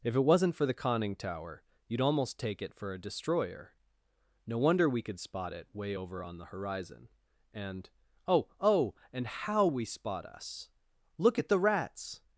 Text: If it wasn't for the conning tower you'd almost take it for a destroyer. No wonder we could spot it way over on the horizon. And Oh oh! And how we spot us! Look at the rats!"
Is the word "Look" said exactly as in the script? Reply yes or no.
yes